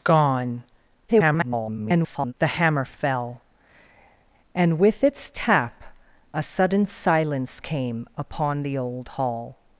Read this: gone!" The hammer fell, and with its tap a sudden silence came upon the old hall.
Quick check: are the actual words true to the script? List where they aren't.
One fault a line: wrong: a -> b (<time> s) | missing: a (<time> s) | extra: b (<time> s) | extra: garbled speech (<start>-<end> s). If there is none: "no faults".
extra: garbled speech (1.1-2.3 s)